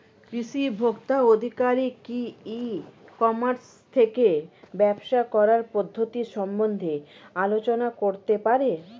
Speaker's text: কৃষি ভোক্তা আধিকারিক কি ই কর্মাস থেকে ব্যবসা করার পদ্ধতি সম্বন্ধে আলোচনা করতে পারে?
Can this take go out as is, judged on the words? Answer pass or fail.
pass